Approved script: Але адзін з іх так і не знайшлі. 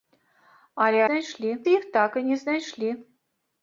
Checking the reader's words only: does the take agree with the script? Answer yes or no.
no